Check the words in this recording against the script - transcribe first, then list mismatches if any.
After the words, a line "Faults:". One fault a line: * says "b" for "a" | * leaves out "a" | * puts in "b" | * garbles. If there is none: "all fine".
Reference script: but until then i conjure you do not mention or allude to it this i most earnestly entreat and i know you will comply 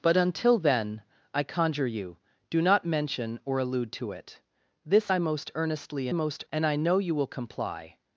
but until then i conjure you do not mention or allude to it this i most earnestly most and i know you will comply
Faults:
* says "most" for "entreat"